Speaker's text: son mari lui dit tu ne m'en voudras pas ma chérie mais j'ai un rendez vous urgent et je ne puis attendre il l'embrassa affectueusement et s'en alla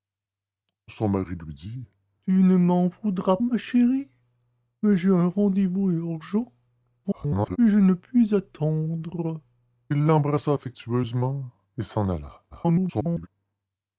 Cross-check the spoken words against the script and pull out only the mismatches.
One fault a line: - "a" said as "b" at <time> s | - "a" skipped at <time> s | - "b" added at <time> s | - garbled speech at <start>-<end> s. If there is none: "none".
- "pas" skipped at 3.4 s
- garbled speech at 7.0-7.6 s
- garbled speech at 12.5-13.3 s